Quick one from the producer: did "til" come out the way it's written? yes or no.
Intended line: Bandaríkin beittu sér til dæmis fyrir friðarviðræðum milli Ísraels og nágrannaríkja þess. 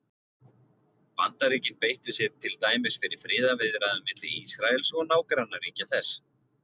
yes